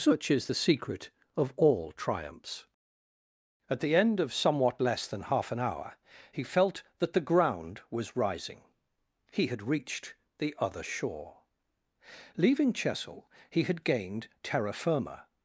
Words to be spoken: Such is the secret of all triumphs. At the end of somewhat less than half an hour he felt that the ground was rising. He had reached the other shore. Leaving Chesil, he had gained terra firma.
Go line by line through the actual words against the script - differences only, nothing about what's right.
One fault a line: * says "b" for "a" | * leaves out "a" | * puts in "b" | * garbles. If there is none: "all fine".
all fine